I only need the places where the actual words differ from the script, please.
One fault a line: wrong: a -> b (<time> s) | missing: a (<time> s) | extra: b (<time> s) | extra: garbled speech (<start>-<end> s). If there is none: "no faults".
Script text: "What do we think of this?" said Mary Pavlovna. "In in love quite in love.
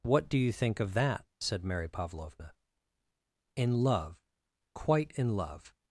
wrong: we -> you (0.4 s)
wrong: this -> that (0.9 s)
missing: in (3.8 s)